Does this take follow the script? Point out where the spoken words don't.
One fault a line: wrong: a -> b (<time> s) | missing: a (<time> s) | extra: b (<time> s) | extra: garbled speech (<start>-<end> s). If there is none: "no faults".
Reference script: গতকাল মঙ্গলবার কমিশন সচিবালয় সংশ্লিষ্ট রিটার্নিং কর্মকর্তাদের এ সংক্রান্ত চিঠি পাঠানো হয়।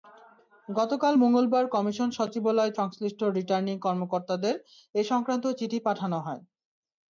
no faults